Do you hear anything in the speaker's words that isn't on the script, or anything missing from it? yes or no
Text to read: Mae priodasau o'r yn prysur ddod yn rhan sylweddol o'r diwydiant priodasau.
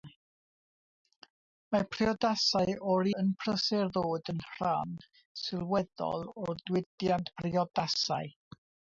no